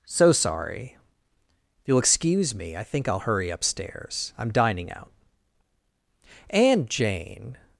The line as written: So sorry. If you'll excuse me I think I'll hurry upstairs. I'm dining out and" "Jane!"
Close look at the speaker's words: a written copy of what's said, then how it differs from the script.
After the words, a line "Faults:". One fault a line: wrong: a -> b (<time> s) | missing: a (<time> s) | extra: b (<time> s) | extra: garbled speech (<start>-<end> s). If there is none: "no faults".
So sorry. If you'll excuse me I think I'll hurry upstairs. I'm dining out and" "Jane!"
Faults:
no faults